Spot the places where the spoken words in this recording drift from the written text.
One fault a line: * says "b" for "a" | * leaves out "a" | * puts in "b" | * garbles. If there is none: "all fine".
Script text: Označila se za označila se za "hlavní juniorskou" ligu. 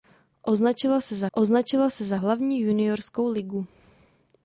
all fine